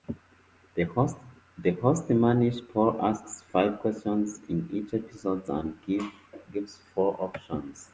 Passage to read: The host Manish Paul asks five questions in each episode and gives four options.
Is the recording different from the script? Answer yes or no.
no